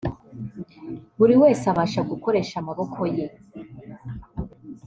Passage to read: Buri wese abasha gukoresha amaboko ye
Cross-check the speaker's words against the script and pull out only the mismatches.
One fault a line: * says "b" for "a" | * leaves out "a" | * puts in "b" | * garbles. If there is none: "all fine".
all fine